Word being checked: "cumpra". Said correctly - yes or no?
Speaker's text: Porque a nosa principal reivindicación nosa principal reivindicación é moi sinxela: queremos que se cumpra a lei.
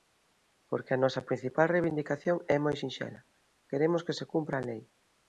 yes